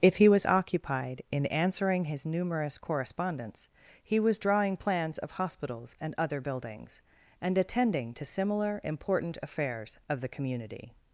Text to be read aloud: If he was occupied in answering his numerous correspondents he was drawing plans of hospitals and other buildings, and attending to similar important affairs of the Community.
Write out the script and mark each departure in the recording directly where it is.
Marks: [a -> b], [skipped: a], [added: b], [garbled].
If he was occupied in answering his numerous correspondents he was drawing plans of hospitals and other buildings, and attending to similar important affairs of the Community.